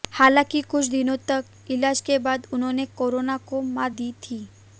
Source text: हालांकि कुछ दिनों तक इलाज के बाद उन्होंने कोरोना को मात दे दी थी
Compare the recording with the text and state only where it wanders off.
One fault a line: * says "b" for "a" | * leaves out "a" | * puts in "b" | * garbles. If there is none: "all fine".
* leaves out "दे"